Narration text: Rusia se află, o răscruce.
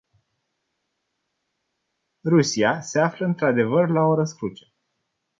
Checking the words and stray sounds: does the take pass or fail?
fail